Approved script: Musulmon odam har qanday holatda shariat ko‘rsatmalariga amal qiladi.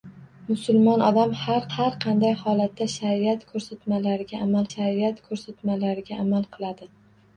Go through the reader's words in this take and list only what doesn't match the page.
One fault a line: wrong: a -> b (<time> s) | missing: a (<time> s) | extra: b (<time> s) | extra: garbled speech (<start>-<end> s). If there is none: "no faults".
extra: har (1.7 s)
extra: shariat ko‘rsatmalariga amal (4.7 s)